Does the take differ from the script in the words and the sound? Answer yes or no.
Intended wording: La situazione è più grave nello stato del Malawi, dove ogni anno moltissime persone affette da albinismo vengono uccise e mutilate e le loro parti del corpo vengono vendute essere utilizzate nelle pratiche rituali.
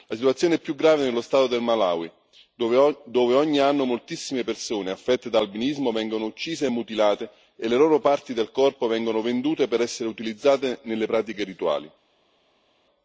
yes